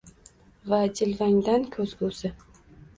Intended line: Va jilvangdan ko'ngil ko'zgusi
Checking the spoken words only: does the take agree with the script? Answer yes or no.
no